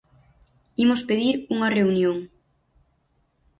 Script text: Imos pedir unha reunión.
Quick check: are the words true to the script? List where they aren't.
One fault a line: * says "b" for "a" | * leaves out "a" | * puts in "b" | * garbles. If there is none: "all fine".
all fine